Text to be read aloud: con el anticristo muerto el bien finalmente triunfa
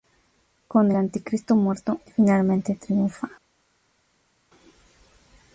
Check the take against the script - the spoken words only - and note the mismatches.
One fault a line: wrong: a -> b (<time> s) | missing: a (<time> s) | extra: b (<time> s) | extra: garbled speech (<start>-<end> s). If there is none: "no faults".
missing: el (0.9 s)
missing: el bien (2.0 s)